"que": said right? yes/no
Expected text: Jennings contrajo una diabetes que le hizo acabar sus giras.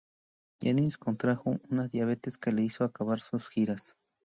yes